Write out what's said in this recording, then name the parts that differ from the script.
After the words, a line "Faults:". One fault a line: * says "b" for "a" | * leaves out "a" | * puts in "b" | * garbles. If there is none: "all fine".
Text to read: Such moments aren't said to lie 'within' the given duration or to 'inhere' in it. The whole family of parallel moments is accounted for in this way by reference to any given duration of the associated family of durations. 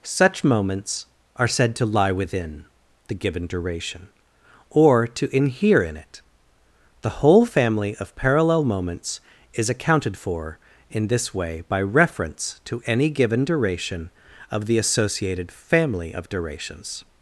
Such moments are said to lie 'within' the given duration or to 'inhere' in it. The whole family of parallel moments is accounted for in this way by reference to any given duration of the associated family of durations.
Faults:
* says "are" for "aren't"